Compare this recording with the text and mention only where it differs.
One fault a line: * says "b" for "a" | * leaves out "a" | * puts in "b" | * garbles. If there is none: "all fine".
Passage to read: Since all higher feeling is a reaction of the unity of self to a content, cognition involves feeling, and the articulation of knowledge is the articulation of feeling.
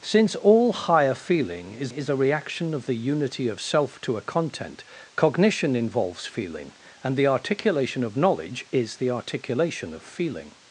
* puts in "is"